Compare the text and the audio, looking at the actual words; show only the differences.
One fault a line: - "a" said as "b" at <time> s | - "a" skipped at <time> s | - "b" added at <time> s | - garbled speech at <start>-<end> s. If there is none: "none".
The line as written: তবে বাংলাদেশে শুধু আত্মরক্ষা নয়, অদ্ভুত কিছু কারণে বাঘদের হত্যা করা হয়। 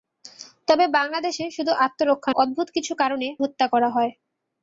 - "নয়" skipped at 2.3 s
- "বাঘদের" skipped at 3.3 s